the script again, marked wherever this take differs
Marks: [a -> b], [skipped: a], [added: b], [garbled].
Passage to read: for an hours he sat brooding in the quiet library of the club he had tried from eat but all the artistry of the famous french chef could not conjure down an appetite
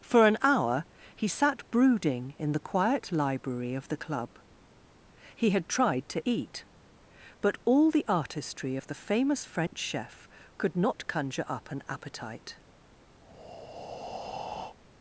for an [hours -> hour] he sat brooding in the quiet library of the club he had tried [from -> to] eat but all the artistry of the famous french chef could not conjure [down -> up] an appetite